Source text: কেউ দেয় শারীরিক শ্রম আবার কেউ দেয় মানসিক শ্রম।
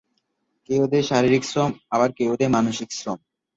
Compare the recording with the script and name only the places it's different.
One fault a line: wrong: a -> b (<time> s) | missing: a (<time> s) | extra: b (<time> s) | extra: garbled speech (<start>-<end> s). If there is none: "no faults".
no faults